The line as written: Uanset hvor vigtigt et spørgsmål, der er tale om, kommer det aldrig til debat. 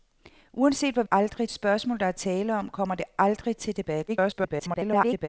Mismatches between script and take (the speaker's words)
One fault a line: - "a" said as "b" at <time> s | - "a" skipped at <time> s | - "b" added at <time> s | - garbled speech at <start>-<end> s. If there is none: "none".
- "vigtigt" said as "aldrig" at 1.1 s
- garbled speech at 4.1-5.3 s